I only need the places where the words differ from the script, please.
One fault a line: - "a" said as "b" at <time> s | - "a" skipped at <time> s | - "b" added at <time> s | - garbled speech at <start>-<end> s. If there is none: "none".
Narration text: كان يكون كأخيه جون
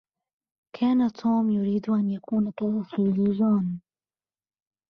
- "توم يريد أن" added at 1.1 s